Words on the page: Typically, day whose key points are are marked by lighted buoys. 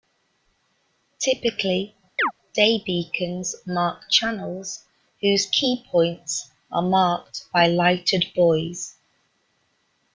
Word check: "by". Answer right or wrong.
right